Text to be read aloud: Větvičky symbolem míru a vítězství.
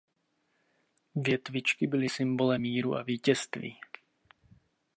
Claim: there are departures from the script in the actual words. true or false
true